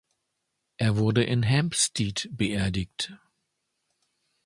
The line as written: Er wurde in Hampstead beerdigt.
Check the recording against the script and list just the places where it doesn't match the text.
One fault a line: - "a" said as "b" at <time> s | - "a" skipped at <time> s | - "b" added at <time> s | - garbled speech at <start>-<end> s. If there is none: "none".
none